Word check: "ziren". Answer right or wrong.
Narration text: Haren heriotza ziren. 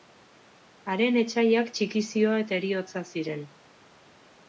right